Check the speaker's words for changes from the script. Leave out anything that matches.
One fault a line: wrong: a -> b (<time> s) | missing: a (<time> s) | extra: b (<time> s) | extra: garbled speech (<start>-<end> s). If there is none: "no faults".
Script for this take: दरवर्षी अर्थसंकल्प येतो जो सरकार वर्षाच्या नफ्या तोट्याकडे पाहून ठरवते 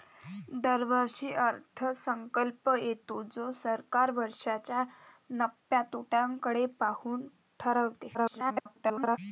extra: garbled speech (8.1-9.2 s)